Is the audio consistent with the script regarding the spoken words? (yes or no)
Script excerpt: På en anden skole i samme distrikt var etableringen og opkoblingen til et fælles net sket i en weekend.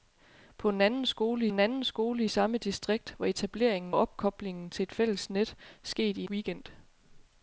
no